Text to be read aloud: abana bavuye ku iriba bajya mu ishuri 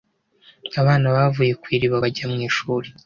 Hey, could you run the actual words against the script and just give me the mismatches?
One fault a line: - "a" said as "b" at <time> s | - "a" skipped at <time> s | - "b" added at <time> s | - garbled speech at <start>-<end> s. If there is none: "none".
none